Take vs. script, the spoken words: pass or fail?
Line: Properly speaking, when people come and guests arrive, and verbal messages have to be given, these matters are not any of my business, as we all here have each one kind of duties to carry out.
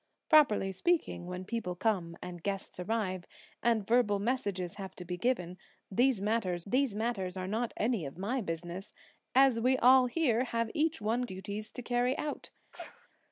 fail